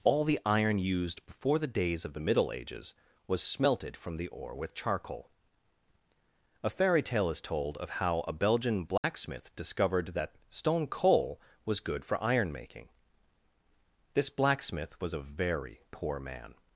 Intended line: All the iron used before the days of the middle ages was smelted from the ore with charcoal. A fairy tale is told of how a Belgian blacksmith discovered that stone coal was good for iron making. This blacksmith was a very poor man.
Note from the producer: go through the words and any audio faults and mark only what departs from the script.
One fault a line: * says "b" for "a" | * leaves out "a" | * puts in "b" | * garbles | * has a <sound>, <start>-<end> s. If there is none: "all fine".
* has a dropout, 9.0-9.0 s